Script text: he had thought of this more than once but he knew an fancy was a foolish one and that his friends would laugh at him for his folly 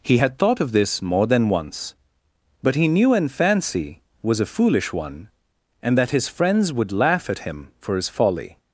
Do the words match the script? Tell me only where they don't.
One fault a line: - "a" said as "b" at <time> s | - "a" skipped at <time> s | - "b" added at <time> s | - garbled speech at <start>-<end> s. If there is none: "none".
none